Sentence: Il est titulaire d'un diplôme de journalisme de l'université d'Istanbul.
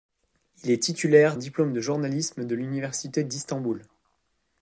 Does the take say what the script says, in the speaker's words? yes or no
no